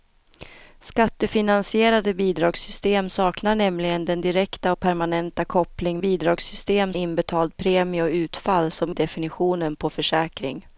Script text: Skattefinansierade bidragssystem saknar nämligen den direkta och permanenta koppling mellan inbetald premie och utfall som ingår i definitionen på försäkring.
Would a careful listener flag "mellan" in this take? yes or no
yes